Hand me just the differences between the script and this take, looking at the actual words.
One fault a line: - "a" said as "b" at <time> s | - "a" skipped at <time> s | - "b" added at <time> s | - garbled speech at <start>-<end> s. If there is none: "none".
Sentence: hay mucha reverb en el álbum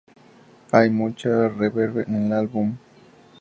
none